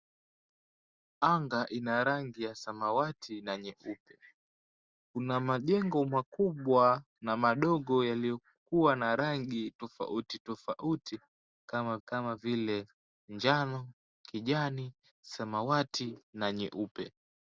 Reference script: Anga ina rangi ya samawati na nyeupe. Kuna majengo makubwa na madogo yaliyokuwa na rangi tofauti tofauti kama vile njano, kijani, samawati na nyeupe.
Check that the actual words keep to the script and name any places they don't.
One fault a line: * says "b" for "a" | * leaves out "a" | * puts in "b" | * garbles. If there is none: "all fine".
* puts in "kama"